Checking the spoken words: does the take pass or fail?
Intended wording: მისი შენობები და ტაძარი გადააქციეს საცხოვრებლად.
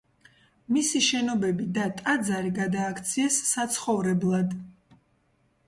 pass